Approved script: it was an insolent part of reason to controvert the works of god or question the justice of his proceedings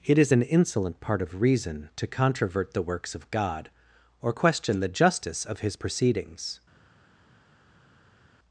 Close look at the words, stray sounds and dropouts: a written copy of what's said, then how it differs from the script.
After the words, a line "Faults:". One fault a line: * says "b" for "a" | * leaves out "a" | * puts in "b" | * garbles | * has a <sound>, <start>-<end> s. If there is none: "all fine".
it is an insolent part of reason to controvert the works of god or question the justice of his proceedings
Faults:
* says "is" for "was"